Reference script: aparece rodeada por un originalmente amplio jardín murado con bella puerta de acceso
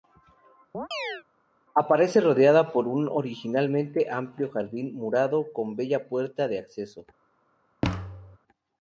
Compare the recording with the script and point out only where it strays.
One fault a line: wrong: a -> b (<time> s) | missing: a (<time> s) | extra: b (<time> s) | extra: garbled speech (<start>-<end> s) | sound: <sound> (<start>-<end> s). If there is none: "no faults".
sound: chirp (0.7-1.2 s)
sound: thud (7.8-8.4 s)